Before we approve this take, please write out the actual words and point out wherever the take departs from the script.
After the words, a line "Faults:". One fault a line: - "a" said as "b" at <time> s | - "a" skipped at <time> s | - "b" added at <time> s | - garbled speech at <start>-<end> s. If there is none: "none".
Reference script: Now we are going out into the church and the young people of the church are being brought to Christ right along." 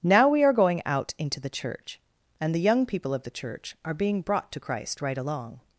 Now we are going out into the church and the young people of the church are being brought to Christ right along."
Faults:
none